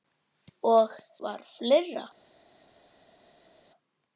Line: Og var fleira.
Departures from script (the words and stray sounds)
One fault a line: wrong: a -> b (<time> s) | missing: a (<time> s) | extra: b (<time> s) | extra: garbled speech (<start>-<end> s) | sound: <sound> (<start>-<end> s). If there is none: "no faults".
no faults